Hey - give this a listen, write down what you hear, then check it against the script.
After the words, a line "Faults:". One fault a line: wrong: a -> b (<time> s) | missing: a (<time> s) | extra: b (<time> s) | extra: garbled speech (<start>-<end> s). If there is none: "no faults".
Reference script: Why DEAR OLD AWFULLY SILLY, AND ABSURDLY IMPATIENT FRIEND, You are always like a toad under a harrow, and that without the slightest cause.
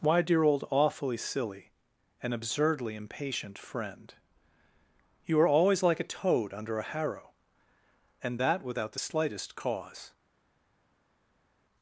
Why DEAR OLD AWFULLY SILLY, AND ABSURDLY IMPATIENT FRIEND, You are always like a toad under a harrow, and that without the slightest cause.
Faults:
no faults